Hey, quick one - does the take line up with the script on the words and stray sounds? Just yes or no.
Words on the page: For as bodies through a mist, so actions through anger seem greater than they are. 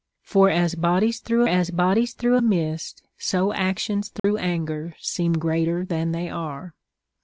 no